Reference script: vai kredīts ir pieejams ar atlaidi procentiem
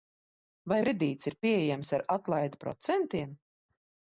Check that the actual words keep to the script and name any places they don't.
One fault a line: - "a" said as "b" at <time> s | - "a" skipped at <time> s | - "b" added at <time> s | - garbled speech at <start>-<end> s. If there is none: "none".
none